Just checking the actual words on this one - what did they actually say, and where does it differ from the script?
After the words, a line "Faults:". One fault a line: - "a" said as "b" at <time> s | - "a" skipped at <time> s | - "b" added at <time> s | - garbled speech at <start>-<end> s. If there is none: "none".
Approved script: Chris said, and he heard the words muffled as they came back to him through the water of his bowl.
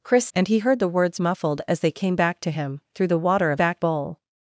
Chris and he heard the words muffled as they came back to him through the water of back bowl.
Faults:
- "said" skipped at 0.3 s
- "his" said as "back" at 3.6 s